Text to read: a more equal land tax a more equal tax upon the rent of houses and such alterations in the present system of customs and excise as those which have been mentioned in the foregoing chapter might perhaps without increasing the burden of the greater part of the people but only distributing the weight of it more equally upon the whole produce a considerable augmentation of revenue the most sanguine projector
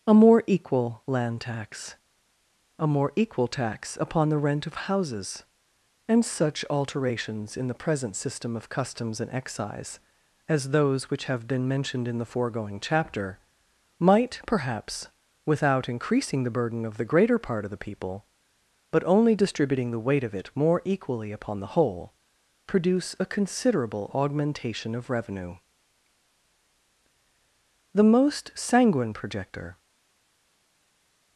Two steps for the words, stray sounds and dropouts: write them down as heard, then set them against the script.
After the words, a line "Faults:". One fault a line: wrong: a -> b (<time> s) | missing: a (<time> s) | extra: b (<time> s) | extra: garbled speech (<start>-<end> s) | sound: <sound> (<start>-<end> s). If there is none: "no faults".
a more equal land tax a more equal tax upon the rent of houses and such alterations in the present system of customs and excise as those which have been mentioned in the foregoing chapter might perhaps without increasing the burden of the greater part of the people but only distributing the weight of it more equally upon the whole produce a considerable augmentation of revenue the most sanguine projector
Faults:
no faults